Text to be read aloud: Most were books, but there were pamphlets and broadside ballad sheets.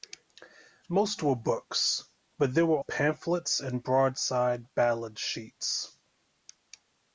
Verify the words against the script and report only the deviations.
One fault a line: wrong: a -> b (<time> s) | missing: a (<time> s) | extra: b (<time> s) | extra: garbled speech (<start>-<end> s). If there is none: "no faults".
no faults